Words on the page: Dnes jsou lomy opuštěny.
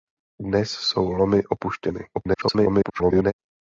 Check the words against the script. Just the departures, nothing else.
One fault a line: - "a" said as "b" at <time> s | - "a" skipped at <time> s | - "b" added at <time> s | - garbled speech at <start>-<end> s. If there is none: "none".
- garbled speech at 2.1-3.3 s